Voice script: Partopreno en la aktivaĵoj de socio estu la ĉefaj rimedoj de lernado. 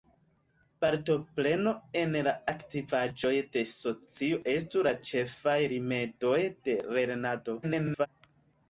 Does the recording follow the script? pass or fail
fail